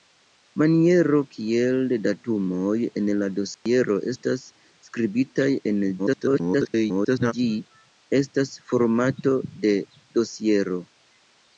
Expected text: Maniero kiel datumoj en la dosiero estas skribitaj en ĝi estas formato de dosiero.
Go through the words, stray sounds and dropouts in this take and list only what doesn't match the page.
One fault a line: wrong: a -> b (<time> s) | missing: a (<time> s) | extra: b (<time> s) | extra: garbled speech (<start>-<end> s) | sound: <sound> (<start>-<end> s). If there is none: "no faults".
sound: dropout (3.5-3.7 s)
extra: garbled speech (6.0-7.3 s)